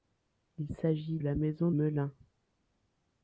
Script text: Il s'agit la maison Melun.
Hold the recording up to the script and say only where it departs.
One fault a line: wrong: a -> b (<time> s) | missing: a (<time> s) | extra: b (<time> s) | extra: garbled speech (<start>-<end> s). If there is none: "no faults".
no faults